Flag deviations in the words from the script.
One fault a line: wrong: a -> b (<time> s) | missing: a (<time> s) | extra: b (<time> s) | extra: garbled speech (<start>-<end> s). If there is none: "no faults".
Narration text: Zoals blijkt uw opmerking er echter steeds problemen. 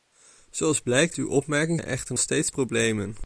no faults